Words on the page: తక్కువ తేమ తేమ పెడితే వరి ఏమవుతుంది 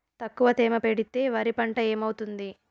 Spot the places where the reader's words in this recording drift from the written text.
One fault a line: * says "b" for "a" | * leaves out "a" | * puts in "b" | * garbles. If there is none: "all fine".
* leaves out "తేమ"
* puts in "పంట"